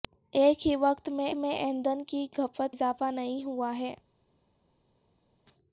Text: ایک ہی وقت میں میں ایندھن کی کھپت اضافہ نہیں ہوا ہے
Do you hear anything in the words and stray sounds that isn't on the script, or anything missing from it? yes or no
no